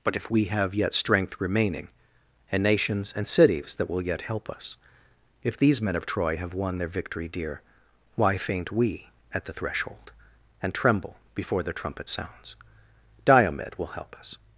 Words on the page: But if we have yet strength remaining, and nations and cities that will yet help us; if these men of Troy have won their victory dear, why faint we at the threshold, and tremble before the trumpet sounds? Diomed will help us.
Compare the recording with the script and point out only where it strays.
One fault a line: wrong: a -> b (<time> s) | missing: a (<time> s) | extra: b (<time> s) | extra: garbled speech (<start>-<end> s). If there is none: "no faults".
no faults